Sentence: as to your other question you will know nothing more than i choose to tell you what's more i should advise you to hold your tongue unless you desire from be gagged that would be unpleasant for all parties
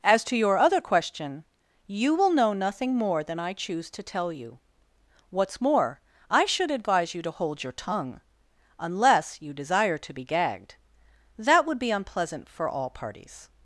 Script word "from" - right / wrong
wrong